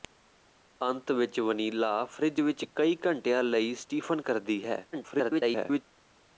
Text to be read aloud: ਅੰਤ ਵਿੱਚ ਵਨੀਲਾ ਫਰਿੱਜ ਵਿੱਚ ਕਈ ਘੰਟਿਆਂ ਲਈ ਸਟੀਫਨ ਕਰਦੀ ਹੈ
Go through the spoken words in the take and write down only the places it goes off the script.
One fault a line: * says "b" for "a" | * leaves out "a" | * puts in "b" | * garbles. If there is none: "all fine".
* garbles